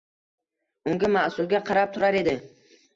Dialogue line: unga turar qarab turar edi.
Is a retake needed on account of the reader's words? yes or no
yes